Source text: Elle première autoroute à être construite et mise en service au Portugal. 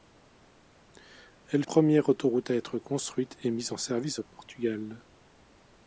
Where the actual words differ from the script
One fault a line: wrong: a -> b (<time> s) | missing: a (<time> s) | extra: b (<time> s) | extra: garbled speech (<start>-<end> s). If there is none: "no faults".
no faults